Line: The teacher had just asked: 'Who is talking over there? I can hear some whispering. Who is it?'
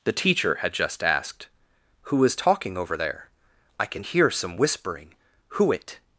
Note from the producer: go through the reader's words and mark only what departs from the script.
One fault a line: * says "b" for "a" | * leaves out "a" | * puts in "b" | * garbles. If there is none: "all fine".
* leaves out "is"